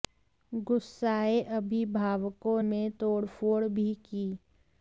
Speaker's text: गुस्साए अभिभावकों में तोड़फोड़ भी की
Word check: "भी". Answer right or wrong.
right